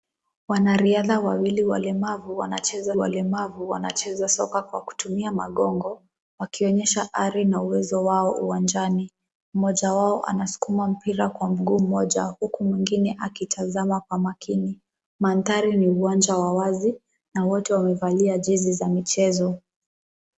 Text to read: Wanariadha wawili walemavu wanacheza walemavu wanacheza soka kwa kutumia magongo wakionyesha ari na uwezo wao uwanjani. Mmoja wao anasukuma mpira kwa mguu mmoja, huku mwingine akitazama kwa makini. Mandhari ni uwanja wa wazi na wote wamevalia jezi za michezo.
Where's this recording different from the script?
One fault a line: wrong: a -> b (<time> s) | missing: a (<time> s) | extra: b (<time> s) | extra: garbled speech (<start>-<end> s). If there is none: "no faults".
no faults